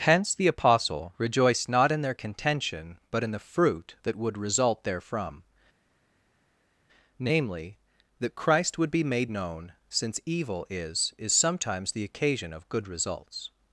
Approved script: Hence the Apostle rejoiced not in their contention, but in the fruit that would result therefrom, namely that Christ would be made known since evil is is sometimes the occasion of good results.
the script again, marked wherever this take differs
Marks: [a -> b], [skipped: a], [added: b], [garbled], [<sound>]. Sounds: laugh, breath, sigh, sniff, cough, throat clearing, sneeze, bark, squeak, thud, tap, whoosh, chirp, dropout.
Hence the Apostle rejoiced not in their contention, but in the fruit that would result therefrom, namely that Christ would be made known since evil is is sometimes the occasion of good results.